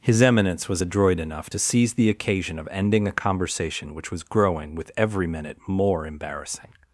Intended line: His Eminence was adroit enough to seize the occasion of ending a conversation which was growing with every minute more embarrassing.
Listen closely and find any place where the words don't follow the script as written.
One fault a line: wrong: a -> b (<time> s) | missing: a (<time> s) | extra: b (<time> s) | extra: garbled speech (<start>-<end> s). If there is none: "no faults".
no faults